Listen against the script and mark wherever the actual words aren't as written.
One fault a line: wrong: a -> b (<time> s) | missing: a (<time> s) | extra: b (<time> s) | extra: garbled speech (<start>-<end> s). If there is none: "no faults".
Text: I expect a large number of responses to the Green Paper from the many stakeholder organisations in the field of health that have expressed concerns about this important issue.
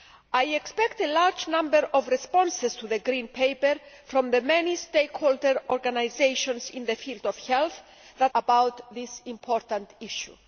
missing: have expressed concerns (8.3 s)